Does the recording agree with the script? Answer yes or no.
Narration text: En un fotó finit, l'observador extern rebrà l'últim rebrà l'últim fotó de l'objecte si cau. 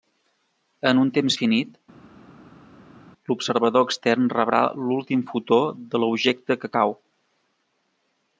no